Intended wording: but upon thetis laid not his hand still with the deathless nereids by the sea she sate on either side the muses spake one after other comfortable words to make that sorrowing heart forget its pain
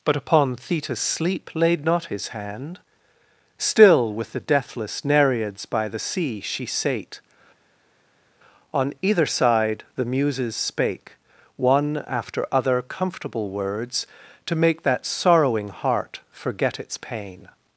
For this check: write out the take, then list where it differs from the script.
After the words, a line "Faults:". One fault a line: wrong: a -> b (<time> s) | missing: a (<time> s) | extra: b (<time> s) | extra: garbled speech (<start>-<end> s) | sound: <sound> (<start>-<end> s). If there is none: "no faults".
but upon thetis sleep laid not his hand still with the deathless nereids by the sea she sate on either side the muses spake one after other comfortable words to make that sorrowing heart forget its pain
Faults:
extra: sleep (1.0 s)